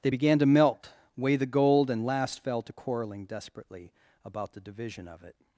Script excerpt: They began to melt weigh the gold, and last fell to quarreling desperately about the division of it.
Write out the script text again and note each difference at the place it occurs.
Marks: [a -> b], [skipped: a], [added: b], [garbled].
They began to melt weigh the gold, and last fell to quarreling desperately about the division of it.